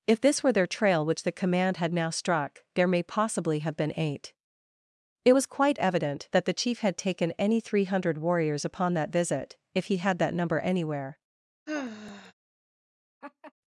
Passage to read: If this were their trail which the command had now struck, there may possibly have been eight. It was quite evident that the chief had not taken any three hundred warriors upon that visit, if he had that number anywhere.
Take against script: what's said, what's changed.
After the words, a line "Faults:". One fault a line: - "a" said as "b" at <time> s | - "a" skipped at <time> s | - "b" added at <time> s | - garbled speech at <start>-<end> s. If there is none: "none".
If this were their trail which the command had now struck, there may possibly have been eight. It was quite evident that the chief had taken any three hundred warriors upon that visit, if he had that number anywhere.
Faults:
- "not" skipped at 7.0 s